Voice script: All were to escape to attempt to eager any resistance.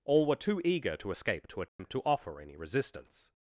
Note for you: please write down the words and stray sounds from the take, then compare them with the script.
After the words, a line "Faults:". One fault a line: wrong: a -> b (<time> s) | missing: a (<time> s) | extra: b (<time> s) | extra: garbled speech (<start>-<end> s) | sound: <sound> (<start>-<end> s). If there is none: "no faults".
All were too eager to escape to attempt to offer any resistance.
Faults:
extra: too eager (0.3 s)
sound: dropout (1.7-1.8 s)
wrong: eager -> offer (2.0 s)